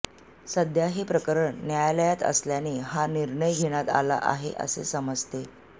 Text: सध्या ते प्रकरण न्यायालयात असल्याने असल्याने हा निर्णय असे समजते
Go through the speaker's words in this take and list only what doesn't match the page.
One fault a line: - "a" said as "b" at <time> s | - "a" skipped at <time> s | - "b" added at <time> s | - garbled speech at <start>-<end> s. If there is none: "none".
- "ते" said as "हे" at 0.9 s
- "असल्याने" skipped at 2.8 s
- "घेण्यात आला आहे" added at 3.5 s